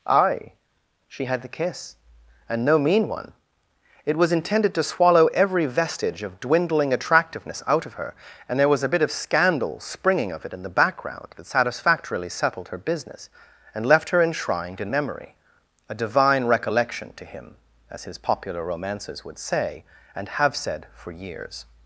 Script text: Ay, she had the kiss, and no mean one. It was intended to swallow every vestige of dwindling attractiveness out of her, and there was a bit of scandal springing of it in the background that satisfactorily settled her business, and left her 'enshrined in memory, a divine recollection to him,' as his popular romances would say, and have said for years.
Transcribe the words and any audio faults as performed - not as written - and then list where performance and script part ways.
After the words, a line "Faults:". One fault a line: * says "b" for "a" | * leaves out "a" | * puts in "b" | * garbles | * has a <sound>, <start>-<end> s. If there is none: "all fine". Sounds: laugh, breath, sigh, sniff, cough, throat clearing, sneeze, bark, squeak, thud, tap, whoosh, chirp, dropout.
Ay, she had the kiss, and no mean one. It was intended to swallow every vestige of dwindling attractiveness out of her, and there was a bit of scandal springing of it in the background that satisfactorily settled her business, and left her 'enshrined in memory, a divine recollection to him,' as his popular romances would say, and have said for years.
Faults:
all fine